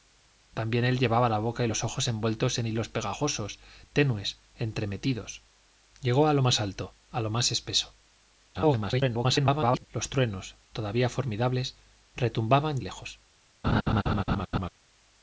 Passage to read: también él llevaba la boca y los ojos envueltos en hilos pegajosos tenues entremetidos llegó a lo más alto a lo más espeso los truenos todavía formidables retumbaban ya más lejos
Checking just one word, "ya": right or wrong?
wrong